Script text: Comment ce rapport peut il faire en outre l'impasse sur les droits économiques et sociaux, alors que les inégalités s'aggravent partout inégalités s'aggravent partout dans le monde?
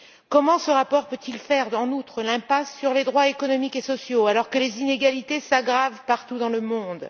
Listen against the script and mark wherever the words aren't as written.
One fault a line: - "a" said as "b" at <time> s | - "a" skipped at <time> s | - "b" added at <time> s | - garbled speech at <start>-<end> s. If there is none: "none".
- "inégalités s'aggravent partout" skipped at 6.4 s